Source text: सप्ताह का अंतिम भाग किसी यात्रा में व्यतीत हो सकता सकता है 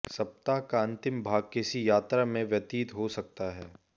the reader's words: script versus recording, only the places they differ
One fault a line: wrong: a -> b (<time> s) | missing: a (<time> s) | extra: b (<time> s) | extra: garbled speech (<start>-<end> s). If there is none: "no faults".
missing: सकता (3.5 s)